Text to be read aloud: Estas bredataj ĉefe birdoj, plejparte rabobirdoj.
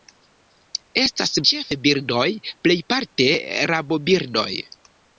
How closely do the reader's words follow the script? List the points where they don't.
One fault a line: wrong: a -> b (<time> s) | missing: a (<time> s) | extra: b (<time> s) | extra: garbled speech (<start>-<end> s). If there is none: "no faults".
missing: bredataj (1.3 s)